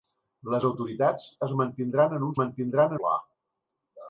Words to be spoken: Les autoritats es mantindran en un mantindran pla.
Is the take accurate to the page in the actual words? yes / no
yes